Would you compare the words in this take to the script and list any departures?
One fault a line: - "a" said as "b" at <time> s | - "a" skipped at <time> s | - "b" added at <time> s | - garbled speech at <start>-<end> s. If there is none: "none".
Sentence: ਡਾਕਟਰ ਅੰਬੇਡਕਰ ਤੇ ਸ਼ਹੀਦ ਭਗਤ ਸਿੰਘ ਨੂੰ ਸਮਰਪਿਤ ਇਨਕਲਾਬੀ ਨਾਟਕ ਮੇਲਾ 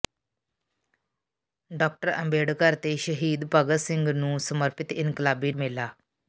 - "ਨਾਟਕ" skipped at 5.5 s